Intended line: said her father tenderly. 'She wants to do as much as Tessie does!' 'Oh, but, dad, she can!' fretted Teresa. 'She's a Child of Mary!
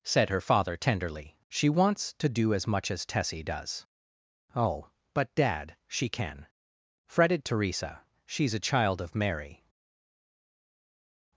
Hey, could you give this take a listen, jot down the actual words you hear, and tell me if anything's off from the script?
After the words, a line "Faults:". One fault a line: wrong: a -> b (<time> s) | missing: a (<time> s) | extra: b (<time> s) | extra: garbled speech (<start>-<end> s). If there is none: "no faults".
said her father tenderly. 'She wants to do as much as Tessie does!' 'Oh, but, dad, she can!' fretted Teresa. 'She's a Child of Mary!
Faults:
no faults